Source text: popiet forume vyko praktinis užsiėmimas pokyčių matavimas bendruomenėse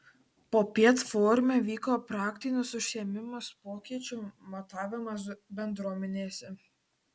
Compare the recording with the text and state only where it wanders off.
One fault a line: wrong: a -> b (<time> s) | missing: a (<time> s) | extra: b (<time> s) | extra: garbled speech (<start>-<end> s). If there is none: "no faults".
no faults